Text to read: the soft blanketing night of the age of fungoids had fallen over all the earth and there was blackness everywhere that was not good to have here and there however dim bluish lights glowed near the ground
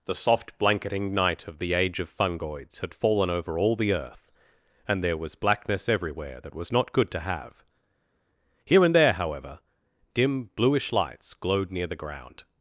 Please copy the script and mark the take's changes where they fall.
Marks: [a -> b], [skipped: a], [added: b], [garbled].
the soft blanketing night of the age of fungoids had fallen over all the earth and there was blackness everywhere that was not good to have here and there however dim bluish lights glowed near the ground